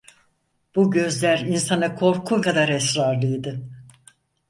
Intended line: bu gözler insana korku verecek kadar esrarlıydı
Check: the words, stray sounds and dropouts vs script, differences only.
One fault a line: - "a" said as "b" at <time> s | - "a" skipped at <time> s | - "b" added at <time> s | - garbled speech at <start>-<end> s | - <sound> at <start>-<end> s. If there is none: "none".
- "verecek" skipped at 2.4 s